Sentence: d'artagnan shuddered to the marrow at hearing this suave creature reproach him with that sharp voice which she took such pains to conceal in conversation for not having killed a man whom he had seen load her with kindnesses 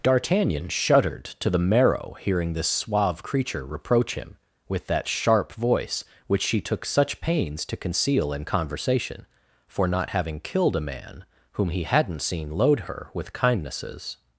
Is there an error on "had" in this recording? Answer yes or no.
yes